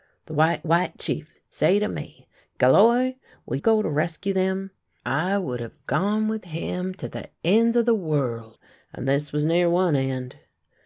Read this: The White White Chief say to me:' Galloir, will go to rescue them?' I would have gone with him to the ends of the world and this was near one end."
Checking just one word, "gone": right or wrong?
right